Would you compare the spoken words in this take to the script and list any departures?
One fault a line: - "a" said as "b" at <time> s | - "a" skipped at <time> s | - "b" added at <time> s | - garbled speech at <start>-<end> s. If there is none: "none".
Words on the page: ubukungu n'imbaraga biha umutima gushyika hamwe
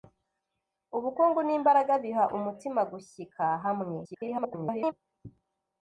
- garbled speech at 4.0-4.9 s